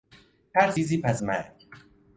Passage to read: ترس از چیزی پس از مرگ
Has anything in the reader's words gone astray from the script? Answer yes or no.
yes